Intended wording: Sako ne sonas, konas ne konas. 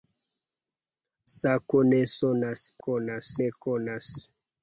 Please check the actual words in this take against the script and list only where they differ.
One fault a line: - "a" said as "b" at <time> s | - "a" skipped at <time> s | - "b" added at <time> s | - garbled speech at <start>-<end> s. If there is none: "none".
none